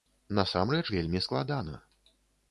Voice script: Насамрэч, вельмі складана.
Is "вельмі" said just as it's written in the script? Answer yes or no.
yes